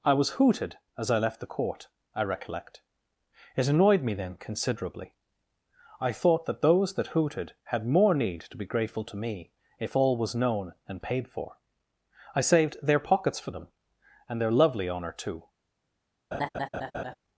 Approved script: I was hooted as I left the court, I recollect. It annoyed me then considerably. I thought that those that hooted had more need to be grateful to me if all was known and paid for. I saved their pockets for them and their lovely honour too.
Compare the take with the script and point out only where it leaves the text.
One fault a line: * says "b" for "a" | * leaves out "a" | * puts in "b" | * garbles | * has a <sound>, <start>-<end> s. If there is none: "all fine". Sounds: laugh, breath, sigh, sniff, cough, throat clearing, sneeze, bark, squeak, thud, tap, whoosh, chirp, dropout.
* has a laugh, 16.3-17.1 s